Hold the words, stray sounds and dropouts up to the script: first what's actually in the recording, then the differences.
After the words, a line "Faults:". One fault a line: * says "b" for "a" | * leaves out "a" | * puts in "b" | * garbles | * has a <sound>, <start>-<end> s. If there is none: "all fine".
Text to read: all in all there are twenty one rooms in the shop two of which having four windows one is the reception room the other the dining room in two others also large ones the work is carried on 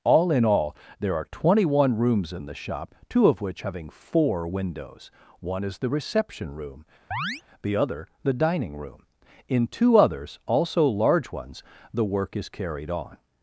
all in all there are twenty one rooms in the shop two of which having four windows one is the reception room the other the dining room in two others also large ones the work is carried on
Faults:
* has a chirp, 7.1-7.4 s